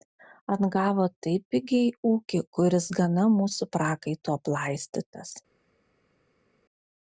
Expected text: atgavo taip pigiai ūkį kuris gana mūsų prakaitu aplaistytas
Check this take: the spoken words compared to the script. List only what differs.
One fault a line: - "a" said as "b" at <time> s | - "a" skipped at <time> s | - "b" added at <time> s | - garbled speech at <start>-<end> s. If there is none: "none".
none